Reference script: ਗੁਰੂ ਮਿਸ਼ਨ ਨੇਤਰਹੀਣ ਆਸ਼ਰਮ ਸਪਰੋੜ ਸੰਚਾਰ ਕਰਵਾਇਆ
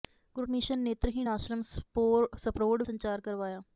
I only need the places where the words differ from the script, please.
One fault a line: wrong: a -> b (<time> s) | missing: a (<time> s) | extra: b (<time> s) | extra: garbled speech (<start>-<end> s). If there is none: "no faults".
no faults